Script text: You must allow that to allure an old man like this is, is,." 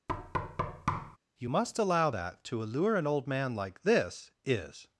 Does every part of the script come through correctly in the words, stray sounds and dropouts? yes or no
no